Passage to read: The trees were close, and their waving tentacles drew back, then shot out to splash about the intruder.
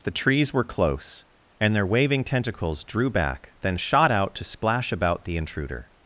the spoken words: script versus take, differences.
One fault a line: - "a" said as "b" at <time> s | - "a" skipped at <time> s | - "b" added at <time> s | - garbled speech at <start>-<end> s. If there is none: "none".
none